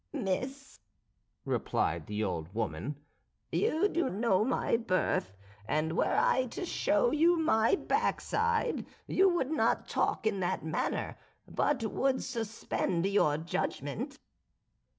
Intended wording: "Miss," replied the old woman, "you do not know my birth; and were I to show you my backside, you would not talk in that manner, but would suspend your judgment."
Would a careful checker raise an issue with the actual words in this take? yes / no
yes